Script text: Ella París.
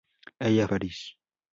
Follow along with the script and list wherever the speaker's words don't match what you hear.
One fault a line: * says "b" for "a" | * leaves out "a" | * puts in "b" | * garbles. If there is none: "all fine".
all fine